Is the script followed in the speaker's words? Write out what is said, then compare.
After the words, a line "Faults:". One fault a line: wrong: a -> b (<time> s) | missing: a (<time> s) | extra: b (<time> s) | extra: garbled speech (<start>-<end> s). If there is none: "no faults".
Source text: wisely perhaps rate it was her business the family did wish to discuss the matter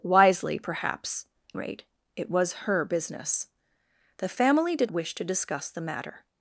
wisely perhaps rate it was her business the family did wish to discuss the matter
Faults:
no faults